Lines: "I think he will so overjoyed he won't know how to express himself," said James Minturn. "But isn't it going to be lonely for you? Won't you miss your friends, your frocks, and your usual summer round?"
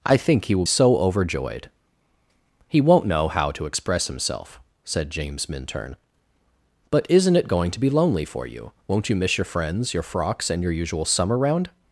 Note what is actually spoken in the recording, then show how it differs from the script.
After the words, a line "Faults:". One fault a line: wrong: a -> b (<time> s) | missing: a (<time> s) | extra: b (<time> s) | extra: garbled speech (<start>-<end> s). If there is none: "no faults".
"I think he will so overjoyed he won't know how to express himself," said James Minturn. "But isn't it going to be lonely for you? Won't you miss your friends, your frocks, and your usual summer round?"
Faults:
no faults